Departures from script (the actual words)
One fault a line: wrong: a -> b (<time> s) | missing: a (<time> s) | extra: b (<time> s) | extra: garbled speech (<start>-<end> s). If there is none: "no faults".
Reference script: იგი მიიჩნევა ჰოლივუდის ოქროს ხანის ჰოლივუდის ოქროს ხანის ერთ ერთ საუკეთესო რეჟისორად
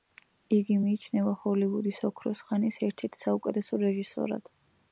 missing: ჰოლივუდის ოქროს ხანის (2.8 s)